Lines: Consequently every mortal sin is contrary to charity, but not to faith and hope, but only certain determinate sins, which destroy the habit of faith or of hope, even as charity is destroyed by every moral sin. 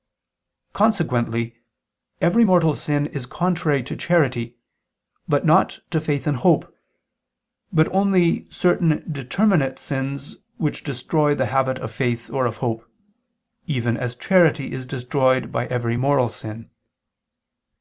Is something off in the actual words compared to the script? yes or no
no